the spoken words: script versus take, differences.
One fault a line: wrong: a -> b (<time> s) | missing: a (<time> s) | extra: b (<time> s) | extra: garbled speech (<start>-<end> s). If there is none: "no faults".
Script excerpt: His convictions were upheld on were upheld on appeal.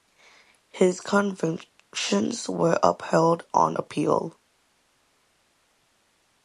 missing: were upheld on (3.8 s)